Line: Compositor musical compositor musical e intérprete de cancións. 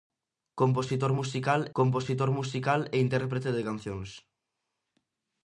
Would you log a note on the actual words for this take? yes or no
no